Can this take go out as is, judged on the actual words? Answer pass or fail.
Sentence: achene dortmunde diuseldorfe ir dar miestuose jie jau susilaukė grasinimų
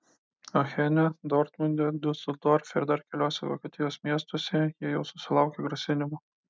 fail